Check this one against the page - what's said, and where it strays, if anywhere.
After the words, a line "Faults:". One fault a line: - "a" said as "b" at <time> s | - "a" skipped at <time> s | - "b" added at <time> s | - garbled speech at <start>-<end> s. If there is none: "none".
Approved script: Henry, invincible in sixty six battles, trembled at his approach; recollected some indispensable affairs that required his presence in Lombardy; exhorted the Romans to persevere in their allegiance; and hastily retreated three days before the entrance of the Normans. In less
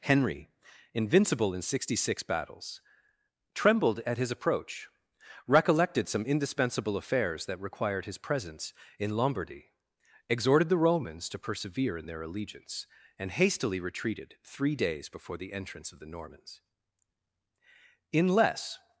Henry, invincible in sixty six battles, trembled at his approach; recollected some indispensable affairs that required his presence in Lombardy; exhorted the Romans to persevere in their allegiance; and hastily retreated three days before the entrance of the Normans. In less
Faults:
none